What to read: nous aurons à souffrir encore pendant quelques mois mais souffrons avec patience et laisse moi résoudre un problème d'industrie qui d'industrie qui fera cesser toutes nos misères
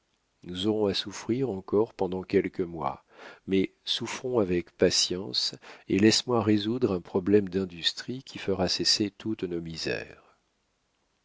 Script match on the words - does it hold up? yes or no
no